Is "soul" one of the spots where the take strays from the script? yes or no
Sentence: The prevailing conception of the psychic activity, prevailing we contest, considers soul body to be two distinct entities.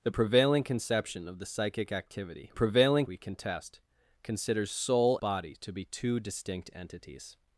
no